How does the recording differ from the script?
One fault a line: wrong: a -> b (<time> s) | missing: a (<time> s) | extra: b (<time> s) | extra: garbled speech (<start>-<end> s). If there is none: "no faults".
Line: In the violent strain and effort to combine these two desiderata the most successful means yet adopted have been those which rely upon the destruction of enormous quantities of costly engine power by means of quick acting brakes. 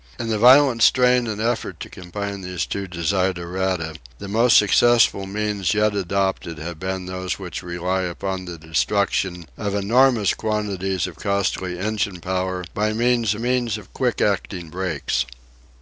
extra: means (13.4 s)